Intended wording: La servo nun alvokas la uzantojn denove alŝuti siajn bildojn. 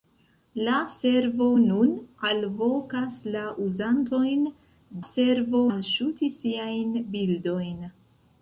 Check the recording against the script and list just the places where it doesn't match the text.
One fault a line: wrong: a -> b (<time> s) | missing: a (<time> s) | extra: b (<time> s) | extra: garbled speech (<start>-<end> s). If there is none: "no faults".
wrong: denove -> servo (5.1 s)